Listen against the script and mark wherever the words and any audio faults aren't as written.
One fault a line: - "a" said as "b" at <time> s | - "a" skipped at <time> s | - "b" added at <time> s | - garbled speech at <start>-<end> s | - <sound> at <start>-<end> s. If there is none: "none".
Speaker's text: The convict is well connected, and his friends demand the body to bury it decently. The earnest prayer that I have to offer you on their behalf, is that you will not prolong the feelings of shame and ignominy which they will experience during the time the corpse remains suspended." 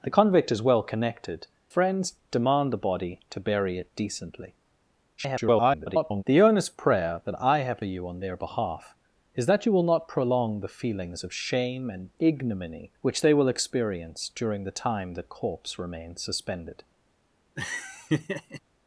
- "and his" skipped at 1.4 s
- garbled speech at 5.2-6.2 s
- "to offer" skipped at 7.8 s
- laugh at 17.6-18.6 s